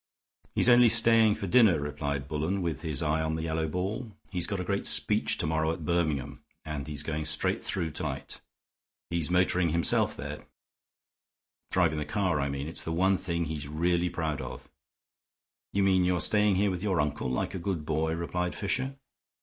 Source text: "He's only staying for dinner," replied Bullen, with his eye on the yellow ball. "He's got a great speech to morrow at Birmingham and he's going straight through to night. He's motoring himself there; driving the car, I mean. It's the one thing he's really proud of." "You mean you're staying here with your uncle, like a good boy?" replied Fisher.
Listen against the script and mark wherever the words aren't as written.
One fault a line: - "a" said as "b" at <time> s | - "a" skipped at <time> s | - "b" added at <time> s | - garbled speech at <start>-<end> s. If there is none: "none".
none